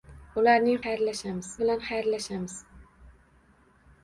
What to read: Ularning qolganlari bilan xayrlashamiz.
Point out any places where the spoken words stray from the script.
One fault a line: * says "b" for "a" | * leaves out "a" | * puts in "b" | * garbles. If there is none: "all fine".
* says "xayrlashamiz" for "qolganlari"